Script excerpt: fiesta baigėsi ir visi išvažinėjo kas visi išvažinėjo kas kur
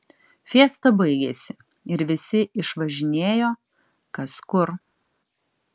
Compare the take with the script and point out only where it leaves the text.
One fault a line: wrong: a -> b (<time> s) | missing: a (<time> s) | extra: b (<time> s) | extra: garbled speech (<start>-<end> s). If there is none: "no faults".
missing: visi išvažinėjo kas (4.4 s)